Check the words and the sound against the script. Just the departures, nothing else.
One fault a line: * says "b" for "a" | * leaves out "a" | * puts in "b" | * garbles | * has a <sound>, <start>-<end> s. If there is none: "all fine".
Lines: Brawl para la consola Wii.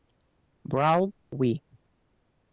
* leaves out "para la consola"